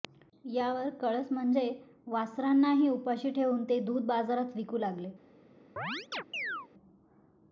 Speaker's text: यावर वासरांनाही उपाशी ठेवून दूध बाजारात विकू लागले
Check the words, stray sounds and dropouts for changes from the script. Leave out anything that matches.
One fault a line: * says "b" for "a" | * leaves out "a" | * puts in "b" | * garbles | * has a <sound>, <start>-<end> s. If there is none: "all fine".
* puts in "कळस म्हणजे"
* puts in "ते"
* has a chirp, 5.8-6.7 s